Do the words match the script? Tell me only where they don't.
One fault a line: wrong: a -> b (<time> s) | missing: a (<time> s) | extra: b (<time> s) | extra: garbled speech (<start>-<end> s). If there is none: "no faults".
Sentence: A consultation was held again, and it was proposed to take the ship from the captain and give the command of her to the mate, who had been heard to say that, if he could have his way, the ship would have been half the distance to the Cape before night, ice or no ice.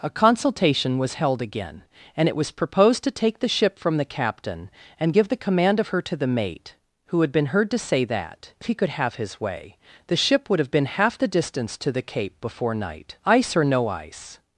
no faults